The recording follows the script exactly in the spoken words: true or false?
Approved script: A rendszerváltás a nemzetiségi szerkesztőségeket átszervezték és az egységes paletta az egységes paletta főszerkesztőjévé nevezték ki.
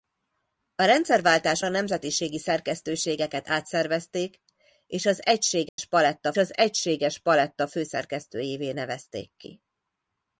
true